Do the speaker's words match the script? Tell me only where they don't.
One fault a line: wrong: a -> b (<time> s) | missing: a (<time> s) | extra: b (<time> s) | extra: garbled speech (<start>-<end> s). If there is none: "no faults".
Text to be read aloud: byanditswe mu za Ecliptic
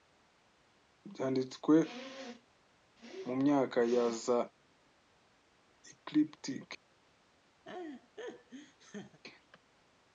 extra: myaka ya (3.4 s)